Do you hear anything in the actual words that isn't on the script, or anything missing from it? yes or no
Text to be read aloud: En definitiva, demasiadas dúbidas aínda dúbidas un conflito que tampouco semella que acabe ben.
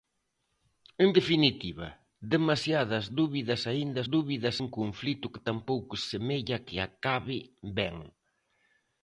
no